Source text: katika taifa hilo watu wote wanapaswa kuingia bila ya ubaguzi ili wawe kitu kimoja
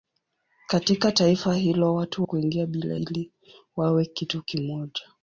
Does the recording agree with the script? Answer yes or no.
no